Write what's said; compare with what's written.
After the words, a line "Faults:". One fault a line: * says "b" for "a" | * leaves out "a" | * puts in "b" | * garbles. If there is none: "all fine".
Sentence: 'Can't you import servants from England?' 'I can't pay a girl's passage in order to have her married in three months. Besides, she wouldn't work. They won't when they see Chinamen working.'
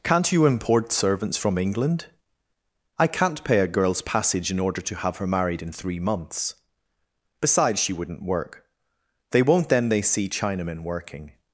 'Can't you import servants from England?' 'I can't pay a girl's passage in order to have her married in three months. Besides, she wouldn't work. They won't then they see Chinamen working.'
Faults:
* says "then" for "when"